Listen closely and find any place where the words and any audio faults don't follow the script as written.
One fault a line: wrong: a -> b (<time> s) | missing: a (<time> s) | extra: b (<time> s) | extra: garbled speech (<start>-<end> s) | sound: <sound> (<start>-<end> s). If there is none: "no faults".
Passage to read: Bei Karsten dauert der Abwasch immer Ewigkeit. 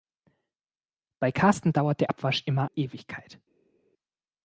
no faults